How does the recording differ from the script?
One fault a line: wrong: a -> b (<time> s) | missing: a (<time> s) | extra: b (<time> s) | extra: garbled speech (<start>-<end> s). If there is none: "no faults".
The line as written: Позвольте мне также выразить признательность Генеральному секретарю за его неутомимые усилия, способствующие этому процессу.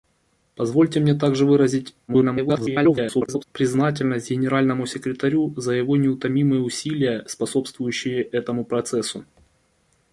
extra: garbled speech (2.1-3.4 s)